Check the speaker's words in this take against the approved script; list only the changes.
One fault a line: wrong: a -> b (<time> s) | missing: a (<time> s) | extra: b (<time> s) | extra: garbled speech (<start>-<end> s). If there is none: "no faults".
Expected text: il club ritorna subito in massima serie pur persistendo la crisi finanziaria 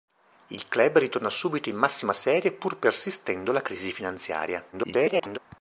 extra: garbled speech (4.7-5.4 s)